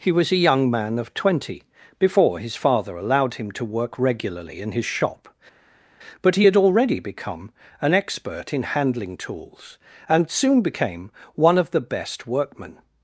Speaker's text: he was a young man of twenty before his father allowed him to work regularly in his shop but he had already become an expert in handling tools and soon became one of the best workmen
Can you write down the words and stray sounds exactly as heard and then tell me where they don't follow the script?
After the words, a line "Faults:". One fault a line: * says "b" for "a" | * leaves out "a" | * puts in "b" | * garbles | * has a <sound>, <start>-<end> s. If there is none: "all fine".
he was a young man of twenty before his father allowed him to work regularly in his shop but he had already become an expert in handling tools and soon became one of the best workmen
Faults:
all fine